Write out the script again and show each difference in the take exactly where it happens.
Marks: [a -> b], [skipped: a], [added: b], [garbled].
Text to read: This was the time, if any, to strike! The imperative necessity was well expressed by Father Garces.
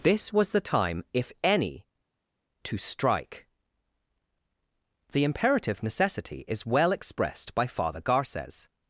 This was the time, if any, to strike! The imperative necessity [was -> is] well expressed by Father Garces.